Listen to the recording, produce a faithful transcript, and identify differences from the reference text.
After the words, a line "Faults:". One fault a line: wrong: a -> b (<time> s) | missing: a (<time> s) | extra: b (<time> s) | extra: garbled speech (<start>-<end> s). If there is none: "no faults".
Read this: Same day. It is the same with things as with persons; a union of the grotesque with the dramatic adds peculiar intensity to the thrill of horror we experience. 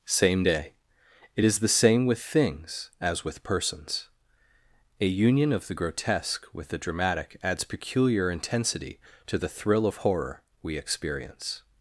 Same day. It is the same with things as with persons; a union of the grotesque with the dramatic adds peculiar intensity to the thrill of horror we experience.
Faults:
no faults